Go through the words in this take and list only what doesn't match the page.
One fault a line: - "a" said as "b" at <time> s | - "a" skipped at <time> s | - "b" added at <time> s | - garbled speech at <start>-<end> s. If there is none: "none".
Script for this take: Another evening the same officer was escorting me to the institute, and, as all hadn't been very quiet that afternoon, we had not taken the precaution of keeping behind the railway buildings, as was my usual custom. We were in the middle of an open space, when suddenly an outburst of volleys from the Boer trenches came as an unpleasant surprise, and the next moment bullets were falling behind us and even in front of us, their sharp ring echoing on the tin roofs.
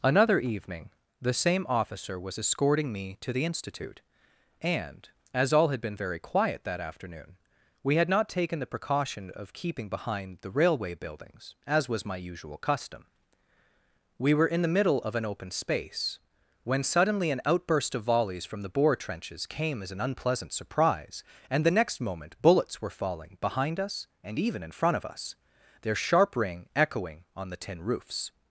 - "hadn't" said as "had" at 5.7 s